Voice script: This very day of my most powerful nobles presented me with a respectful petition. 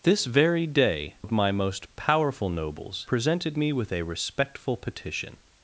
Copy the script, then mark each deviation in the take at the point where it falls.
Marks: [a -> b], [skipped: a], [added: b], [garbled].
This very day of my most powerful nobles presented me with a respectful petition.